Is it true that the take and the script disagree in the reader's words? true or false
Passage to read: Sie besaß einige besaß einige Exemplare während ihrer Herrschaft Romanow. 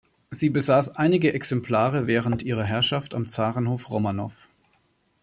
true